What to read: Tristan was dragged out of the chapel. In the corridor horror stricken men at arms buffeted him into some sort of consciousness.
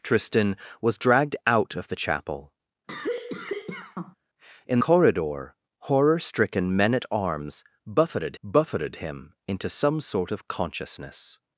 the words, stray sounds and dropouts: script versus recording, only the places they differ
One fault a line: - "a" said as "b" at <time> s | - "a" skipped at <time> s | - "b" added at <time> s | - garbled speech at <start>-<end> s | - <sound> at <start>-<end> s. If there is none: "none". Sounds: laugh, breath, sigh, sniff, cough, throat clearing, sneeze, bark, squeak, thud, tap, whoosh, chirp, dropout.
- cough at 2.9-4.2 s
- "the" skipped at 4.8 s
- "buffeted" added at 8.4 s